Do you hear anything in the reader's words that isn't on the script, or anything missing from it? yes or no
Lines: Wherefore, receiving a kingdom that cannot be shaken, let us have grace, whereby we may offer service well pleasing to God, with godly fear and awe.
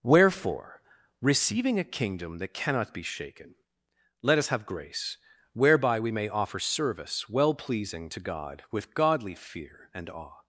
no